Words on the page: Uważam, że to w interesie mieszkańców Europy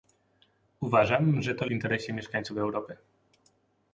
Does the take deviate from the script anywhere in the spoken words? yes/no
no